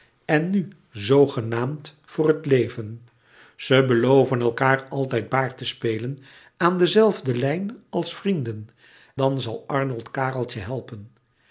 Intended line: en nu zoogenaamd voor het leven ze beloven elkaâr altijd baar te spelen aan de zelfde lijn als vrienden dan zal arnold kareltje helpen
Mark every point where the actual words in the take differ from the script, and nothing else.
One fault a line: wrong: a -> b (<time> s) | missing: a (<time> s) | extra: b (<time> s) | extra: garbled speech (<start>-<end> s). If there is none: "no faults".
no faults